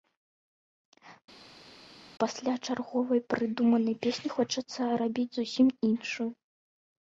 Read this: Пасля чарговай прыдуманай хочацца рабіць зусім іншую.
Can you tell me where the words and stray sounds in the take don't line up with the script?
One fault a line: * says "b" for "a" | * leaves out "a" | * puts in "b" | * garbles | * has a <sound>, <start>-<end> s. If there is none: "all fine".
* puts in "песні"